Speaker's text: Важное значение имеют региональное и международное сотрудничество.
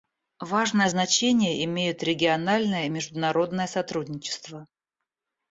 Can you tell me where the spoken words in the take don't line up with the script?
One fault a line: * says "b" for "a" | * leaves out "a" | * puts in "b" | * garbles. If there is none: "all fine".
all fine